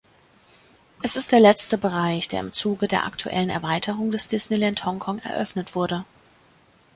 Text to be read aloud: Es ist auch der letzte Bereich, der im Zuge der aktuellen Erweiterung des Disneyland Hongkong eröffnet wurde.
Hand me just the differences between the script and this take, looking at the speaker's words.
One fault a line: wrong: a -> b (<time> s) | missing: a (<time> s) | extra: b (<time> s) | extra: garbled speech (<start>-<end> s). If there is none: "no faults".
missing: auch (1.3 s)